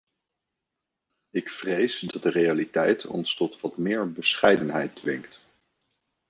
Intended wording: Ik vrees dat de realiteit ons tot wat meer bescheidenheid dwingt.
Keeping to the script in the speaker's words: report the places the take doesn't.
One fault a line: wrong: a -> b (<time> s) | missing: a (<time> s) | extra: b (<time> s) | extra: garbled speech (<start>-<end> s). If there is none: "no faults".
no faults